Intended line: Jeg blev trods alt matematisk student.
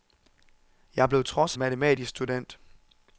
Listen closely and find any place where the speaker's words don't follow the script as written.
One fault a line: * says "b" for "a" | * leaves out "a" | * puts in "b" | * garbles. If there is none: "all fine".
* leaves out "alt"